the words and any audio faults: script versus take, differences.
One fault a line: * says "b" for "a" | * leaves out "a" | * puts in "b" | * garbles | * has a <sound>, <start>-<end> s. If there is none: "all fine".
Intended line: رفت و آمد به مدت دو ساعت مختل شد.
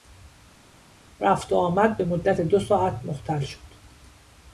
all fine